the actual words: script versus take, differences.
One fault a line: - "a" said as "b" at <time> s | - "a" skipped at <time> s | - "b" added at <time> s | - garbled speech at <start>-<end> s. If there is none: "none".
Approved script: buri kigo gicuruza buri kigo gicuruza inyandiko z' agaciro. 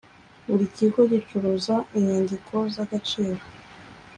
- "buri kigo gicuruza" skipped at 1.8 s